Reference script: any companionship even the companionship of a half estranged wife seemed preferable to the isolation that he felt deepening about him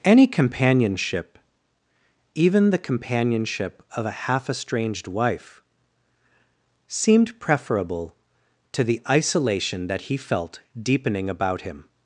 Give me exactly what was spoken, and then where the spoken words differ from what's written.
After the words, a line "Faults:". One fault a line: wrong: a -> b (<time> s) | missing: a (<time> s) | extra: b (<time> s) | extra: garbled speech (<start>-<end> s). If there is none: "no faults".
any companionship even the companionship of a half estranged wife seemed preferable to the isolation that he felt deepening about him
Faults:
no faults